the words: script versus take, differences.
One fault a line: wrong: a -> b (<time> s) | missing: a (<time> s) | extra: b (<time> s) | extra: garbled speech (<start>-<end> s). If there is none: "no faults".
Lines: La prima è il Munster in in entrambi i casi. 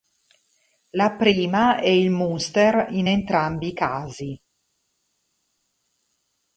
missing: in (3.1 s)